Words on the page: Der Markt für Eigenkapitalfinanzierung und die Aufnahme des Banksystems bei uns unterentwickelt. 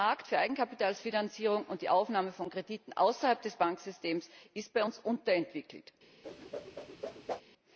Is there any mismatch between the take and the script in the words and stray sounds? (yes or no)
yes